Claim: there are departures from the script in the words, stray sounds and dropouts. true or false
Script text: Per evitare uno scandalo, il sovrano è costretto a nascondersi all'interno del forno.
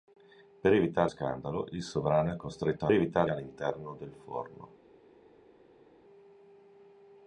true